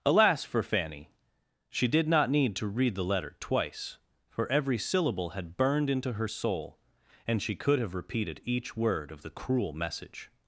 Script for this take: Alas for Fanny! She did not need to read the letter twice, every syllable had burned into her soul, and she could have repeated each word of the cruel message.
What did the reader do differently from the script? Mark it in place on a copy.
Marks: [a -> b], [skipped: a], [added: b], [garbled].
Alas for Fanny! She did not need to read the letter twice, [added: for] every syllable had burned into her soul, and she could have repeated each word of the cruel message.